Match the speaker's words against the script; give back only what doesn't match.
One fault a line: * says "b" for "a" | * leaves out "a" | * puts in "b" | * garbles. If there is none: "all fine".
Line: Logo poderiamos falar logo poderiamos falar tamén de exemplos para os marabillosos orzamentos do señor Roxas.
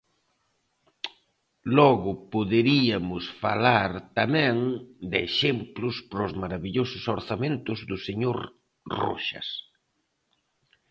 * leaves out "logo poderiamos falar"